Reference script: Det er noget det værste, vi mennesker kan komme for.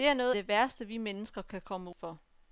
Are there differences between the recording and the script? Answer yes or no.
no